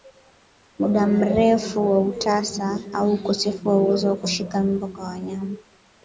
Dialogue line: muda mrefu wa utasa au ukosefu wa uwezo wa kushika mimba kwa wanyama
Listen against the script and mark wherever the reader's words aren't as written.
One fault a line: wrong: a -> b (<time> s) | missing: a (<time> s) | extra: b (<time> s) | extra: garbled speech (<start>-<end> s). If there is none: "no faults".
no faults